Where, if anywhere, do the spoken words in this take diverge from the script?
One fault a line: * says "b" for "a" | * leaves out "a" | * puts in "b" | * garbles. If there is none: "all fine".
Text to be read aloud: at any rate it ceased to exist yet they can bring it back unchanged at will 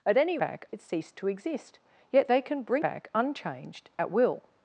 * says "back" for "rate"
* leaves out "it"